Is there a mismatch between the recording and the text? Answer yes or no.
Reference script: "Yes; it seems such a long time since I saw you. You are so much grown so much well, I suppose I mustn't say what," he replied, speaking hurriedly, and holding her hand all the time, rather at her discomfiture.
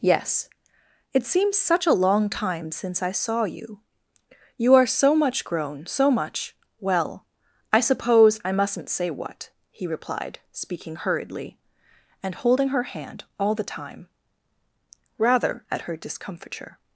no